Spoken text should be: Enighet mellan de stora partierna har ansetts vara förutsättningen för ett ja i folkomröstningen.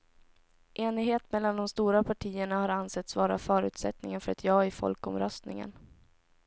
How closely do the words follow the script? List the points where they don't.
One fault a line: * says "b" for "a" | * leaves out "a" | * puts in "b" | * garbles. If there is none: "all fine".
all fine